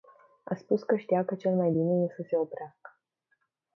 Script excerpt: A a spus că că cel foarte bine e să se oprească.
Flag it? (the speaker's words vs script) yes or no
yes